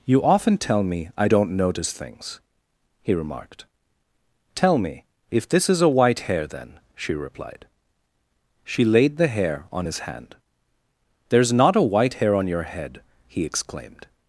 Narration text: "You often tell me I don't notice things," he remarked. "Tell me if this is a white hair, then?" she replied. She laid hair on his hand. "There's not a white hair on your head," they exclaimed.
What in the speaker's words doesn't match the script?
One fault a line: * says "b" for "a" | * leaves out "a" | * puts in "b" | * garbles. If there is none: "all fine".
* puts in "the"
* says "he" for "they"